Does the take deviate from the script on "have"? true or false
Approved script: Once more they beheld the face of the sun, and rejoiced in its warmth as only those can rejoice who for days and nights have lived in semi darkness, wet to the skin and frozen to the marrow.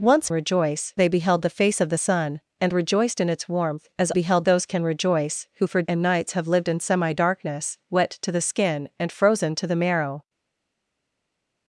false